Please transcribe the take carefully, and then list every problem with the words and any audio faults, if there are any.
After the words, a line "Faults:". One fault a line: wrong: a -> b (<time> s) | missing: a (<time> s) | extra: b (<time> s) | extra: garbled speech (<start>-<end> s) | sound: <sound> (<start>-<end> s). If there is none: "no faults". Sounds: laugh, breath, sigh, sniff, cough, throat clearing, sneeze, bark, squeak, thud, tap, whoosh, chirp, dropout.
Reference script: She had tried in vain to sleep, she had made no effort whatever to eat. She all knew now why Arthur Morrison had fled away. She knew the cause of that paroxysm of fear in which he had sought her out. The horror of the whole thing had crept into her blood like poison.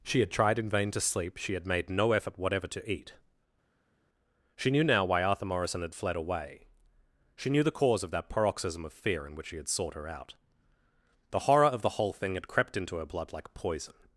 She had tried in vain to sleep, she had made no effort whatever to eat. She knew now why Arthur Morrison had fled away. She knew the cause of that paroxysm of fear in which he had sought her out. The horror of the whole thing had crept into her blood like poison.
Faults:
missing: all (4.7 s)